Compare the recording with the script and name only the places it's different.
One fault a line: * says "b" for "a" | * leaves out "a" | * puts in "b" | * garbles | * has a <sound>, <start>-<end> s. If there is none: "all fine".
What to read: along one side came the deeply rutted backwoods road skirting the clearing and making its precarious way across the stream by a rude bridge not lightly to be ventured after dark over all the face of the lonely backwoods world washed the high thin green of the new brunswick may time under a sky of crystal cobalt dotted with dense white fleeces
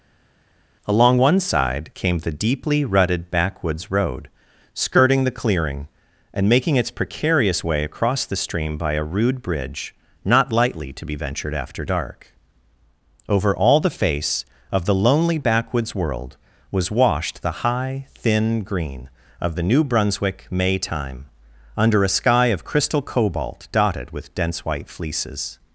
* puts in "was"